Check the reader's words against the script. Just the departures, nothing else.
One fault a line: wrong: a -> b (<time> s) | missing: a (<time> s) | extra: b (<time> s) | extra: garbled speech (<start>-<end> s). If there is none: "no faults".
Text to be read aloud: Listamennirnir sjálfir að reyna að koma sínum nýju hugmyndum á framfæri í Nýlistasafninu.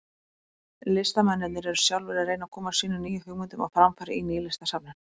extra: eru (1.7 s)